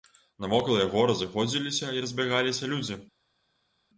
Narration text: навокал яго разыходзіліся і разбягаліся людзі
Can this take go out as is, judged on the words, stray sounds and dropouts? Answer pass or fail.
pass